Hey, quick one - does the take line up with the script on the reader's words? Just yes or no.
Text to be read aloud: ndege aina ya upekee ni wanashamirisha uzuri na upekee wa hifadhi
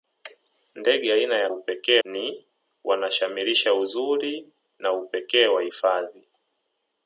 yes